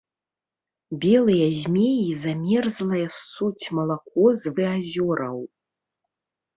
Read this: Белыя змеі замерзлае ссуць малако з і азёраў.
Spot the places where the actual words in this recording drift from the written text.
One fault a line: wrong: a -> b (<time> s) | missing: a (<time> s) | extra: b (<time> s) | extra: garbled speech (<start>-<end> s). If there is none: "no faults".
no faults